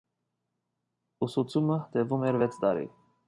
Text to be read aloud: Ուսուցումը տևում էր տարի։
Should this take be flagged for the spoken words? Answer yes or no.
yes